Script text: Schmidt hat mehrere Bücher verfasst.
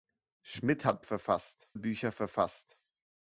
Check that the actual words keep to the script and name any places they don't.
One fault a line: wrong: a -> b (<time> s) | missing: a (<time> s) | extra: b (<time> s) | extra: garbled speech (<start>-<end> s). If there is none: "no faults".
wrong: mehrere -> verfasst (1.0 s)